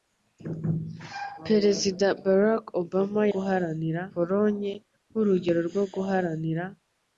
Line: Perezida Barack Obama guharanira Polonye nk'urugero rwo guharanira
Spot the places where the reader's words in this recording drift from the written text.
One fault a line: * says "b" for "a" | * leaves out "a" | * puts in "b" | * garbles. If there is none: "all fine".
all fine